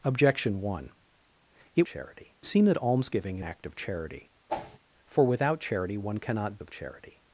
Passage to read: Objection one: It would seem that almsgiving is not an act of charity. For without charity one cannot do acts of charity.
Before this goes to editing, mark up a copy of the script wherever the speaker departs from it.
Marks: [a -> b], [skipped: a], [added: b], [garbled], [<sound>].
Objection one: It [would -> charity] seem that almsgiving [skipped: is not an] act of charity. [whoosh] For without charity one cannot [skipped: do acts] of charity.